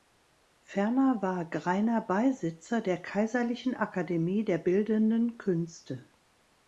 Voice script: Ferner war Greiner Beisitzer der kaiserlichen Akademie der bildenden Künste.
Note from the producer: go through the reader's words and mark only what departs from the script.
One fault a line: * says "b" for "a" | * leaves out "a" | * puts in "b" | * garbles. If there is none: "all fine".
all fine